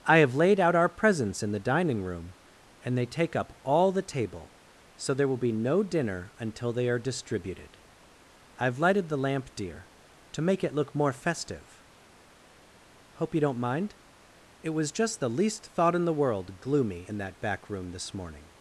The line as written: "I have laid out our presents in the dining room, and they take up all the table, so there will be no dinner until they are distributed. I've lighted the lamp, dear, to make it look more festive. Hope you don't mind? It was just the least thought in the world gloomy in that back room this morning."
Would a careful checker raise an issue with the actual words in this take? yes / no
no